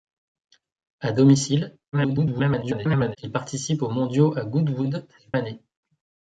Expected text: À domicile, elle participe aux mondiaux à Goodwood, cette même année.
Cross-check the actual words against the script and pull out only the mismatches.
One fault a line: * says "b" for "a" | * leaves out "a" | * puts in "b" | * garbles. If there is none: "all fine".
* garbles
* leaves out "même"